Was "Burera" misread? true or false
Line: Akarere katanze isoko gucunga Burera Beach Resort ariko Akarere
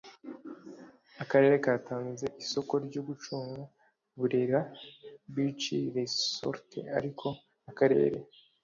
false